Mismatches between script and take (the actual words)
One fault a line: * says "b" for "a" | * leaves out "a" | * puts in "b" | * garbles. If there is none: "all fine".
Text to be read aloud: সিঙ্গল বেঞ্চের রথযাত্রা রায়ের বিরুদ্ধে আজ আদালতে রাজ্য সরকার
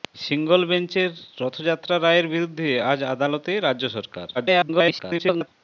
* garbles